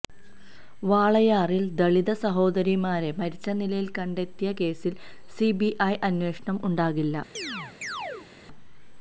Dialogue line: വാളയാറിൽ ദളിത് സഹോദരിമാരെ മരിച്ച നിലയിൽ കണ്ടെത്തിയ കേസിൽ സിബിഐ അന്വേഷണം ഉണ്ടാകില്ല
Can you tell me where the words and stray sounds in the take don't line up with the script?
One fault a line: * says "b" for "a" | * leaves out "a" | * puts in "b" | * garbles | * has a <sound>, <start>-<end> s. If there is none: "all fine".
* has a chirp, 7.3-8.3 s